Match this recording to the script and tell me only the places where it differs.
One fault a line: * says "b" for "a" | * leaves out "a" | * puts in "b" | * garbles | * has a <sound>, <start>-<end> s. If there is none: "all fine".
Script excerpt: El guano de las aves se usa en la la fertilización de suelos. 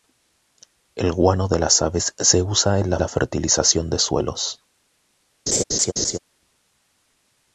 * has a laugh, 5.5-6.2 s